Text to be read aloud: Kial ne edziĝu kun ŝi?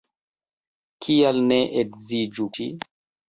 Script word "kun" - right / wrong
wrong